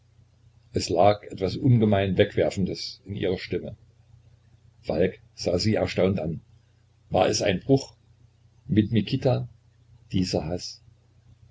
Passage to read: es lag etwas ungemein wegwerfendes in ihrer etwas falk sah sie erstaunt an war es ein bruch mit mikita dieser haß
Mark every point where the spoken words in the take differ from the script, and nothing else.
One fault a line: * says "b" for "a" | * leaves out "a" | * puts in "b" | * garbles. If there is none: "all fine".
* says "stimme" for "etwas"